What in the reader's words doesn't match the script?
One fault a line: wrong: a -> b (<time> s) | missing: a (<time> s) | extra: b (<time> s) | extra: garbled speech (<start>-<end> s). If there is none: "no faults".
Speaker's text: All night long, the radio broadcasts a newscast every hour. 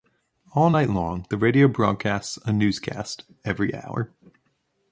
no faults